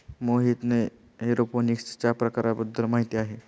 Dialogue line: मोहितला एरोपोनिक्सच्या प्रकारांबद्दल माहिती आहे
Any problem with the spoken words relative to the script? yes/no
no